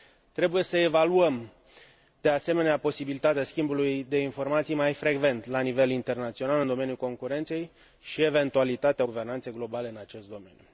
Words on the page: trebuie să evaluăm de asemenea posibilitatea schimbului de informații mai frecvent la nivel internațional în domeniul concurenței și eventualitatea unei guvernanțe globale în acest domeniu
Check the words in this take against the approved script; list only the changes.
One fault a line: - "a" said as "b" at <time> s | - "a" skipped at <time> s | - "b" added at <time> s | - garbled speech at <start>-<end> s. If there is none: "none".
- "unei" skipped at 9.0 s